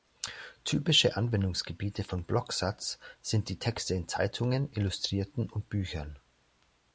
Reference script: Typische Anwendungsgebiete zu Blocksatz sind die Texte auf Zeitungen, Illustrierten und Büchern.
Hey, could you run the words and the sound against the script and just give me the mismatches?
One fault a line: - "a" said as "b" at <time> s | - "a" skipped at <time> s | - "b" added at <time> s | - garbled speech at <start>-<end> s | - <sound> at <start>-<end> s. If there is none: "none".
- "zu" said as "von" at 2.0 s
- "auf" said as "in" at 3.9 s